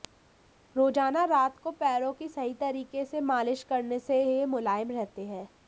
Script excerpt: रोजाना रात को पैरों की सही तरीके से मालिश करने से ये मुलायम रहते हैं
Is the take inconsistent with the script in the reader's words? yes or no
no